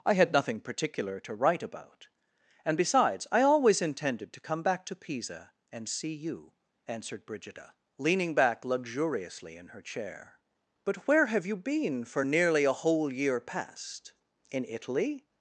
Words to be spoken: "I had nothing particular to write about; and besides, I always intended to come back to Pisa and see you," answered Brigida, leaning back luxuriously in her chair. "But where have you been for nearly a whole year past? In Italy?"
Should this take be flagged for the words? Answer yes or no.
no